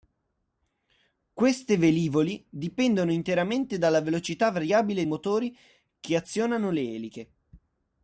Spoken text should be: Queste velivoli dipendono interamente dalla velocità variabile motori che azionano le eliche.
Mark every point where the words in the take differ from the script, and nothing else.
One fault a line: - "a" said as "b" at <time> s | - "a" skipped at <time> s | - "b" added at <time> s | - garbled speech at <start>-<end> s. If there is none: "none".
none